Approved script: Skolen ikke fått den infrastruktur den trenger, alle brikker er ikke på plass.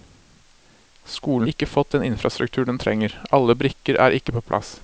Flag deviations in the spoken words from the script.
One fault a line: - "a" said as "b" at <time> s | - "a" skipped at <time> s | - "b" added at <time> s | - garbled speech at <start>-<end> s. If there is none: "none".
none